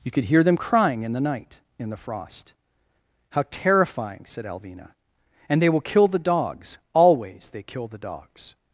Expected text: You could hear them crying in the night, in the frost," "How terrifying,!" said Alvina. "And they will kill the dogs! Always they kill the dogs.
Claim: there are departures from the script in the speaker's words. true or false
false